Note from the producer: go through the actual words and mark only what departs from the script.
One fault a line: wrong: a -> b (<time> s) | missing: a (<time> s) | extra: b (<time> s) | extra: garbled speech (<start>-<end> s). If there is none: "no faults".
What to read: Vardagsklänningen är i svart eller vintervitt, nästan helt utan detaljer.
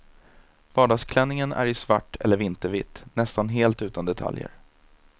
no faults